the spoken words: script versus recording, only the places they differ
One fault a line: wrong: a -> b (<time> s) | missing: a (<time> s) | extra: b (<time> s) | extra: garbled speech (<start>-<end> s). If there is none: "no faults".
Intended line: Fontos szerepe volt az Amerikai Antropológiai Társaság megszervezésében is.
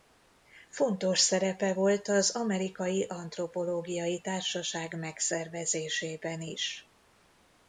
no faults